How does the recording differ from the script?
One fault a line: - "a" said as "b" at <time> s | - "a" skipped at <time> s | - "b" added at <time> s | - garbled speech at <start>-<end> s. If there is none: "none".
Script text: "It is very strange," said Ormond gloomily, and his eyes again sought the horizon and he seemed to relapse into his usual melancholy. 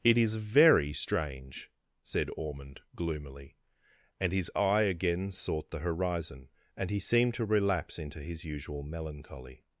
- "eyes" said as "eye" at 4.5 s